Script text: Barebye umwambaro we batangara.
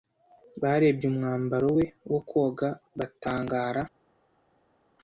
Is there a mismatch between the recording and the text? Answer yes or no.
yes